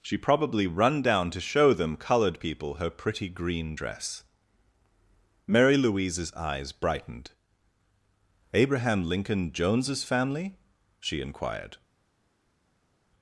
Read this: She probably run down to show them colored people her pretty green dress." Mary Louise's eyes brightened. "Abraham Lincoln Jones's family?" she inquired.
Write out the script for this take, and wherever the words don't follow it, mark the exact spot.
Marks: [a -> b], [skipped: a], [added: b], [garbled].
She probably run down to show them colored people her pretty green dress." Mary Louise's eyes brightened. "Abraham Lincoln Jones's family?" she inquired.